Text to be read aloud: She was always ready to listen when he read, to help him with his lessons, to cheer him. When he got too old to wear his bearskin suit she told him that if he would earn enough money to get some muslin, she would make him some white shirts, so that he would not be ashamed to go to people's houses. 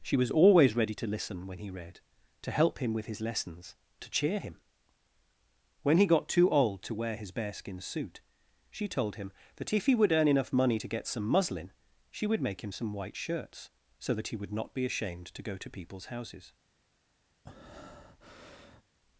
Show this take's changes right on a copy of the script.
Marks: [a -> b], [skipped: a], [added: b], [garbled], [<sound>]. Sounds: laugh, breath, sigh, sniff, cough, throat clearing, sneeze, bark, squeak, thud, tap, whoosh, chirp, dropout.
She was always ready to listen when he read, to help him with his lessons, to cheer him. When he got too old to wear his bearskin suit she told him that if he would earn enough money to get some muslin, she would make him some white shirts, so that he would not be ashamed to go to people's houses. [breath]